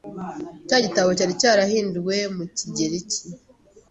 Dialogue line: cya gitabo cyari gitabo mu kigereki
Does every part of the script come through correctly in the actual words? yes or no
no